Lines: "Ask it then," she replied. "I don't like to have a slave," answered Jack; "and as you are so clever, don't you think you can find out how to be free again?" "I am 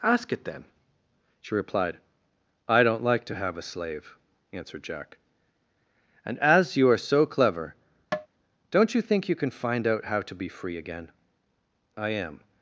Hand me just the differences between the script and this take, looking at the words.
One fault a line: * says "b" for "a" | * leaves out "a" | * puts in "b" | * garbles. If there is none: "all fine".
all fine